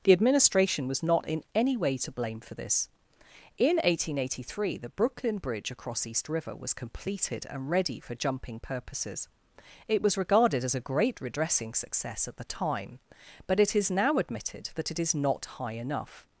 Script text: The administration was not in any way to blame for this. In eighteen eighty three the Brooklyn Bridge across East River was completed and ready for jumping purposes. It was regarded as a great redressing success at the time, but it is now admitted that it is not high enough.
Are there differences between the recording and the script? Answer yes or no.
no